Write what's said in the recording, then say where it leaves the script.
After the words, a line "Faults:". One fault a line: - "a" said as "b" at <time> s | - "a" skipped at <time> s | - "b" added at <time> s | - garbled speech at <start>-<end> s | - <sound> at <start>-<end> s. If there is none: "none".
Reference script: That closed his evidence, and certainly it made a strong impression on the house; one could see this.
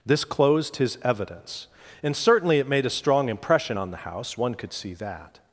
This closed his evidence, and certainly it made a strong impression on the house; one could see that.
Faults:
- "That" said as "This" at 0.1 s
- "this" said as "that" at 4.9 s